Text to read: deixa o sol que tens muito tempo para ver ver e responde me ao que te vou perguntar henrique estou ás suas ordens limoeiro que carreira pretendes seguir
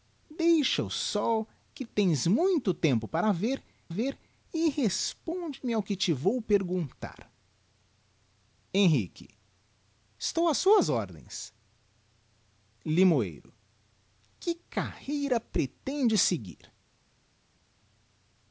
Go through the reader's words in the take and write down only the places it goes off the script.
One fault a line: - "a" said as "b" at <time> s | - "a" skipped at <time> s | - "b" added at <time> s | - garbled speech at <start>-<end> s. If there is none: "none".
none